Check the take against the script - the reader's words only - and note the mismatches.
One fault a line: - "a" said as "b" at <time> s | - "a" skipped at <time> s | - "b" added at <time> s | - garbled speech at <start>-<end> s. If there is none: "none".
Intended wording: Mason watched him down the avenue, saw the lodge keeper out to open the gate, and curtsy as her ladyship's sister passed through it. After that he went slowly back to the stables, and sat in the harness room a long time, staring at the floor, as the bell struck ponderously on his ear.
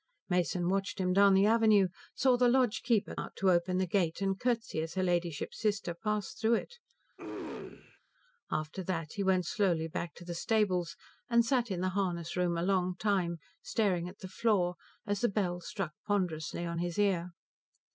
none